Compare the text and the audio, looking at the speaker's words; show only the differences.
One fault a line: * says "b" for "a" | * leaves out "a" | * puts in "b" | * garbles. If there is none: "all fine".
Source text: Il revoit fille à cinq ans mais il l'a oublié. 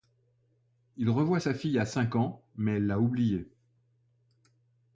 * puts in "sa"
* says "elle" for "il"